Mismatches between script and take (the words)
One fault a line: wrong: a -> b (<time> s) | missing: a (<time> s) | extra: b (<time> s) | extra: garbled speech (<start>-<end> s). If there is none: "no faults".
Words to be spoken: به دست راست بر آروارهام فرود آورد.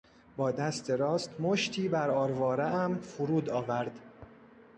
wrong: به -> با (0.4 s)
extra: مشتی (1.4 s)